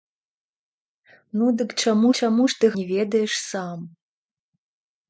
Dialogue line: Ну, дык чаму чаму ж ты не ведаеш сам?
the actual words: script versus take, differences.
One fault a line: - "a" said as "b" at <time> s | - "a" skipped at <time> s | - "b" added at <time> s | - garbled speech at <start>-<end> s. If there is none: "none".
none